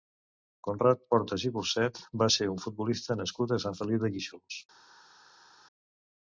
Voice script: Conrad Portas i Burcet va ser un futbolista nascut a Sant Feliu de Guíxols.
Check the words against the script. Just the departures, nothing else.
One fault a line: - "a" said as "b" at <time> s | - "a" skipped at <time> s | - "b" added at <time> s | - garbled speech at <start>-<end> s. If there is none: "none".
none